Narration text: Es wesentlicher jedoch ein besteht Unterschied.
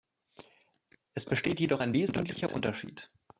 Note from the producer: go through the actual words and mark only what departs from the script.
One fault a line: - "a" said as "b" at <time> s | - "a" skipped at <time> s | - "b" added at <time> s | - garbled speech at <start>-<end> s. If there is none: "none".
- "wesentlicher" said as "besteht" at 1.2 s
- "besteht" said as "wesentlicher" at 1.9 s